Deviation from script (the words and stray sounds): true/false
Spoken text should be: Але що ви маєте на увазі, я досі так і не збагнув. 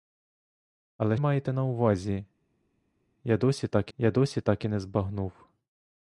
true